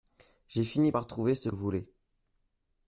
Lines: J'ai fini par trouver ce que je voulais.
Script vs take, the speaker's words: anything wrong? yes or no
yes